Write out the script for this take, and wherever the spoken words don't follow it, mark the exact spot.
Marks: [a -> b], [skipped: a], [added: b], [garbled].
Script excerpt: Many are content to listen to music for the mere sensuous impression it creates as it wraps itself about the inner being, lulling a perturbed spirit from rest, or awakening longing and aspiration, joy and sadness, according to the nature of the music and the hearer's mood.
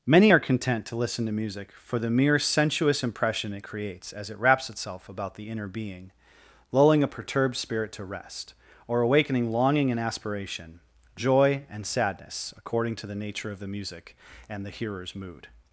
Many are content to listen to music for the mere sensuous impression it creates as it wraps itself about the inner being, lulling a perturbed spirit [from -> to] rest, or awakening longing and aspiration, joy and sadness, according to the nature of the music and the hearer's mood.